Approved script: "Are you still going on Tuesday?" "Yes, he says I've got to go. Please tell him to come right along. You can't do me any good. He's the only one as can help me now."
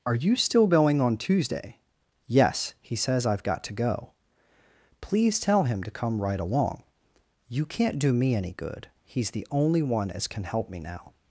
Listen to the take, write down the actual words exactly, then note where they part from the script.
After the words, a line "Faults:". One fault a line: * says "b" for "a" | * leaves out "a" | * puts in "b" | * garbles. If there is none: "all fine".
"Are you still going on Tuesday?" "Yes, he says I've got to go. Please tell him to come right along. You can't do me any good. He's the only one as can help me now."
Faults:
all fine